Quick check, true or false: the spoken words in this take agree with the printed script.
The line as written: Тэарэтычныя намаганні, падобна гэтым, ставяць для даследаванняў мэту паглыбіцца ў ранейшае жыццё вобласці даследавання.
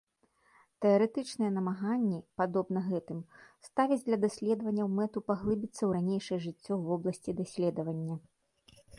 true